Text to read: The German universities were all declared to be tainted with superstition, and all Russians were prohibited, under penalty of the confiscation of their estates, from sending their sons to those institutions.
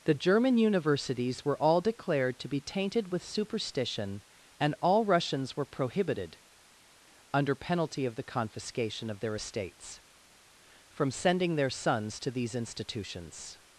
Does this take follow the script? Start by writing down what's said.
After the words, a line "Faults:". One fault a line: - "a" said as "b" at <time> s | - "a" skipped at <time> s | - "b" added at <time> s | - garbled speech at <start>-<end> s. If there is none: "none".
The German universities were all declared to be tainted with superstition, and all Russians were prohibited, under penalty of the confiscation of their estates, from sending their sons to these institutions.
Faults:
- "those" said as "these" at 12.3 s